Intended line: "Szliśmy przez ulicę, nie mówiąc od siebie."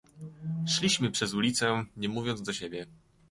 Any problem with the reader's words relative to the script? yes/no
yes